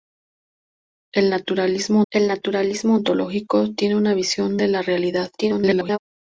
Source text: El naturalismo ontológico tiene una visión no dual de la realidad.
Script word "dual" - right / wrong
wrong